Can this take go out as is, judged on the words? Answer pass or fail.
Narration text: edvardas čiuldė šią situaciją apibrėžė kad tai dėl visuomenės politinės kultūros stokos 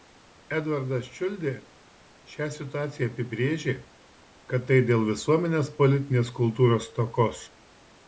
pass